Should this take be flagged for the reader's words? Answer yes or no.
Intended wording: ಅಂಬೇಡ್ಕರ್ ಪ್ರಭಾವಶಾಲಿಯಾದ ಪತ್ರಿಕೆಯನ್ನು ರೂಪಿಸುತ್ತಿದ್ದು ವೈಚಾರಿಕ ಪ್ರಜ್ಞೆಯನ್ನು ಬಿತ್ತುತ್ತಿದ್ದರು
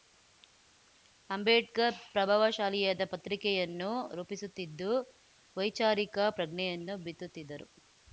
no